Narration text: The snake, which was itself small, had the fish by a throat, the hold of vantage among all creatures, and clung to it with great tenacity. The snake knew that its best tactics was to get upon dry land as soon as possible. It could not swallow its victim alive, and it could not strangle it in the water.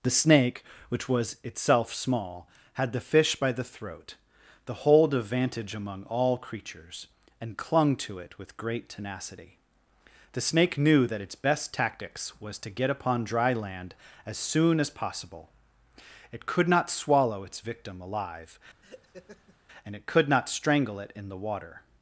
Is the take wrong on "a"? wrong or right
wrong